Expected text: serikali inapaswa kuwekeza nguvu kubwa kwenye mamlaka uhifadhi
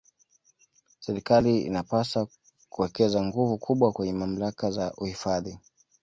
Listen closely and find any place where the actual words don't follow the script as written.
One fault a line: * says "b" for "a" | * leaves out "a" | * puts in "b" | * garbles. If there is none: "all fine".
* puts in "za"